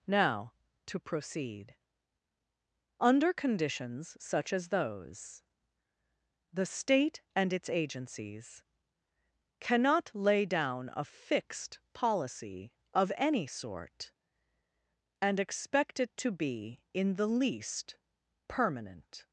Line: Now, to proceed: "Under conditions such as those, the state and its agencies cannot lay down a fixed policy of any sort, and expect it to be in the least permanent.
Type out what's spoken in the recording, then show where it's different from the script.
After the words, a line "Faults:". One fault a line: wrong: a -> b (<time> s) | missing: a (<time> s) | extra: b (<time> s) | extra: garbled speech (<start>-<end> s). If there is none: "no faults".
Now, to proceed: "Under conditions such as those, the state and its agencies cannot lay down a fixed policy of any sort, and expect it to be in the least permanent.
Faults:
no faults